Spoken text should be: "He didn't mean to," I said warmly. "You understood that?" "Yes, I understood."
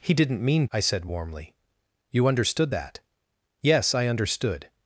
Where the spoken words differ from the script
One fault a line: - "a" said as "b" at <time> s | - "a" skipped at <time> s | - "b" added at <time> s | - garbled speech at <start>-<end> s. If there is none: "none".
- "to" skipped at 0.7 s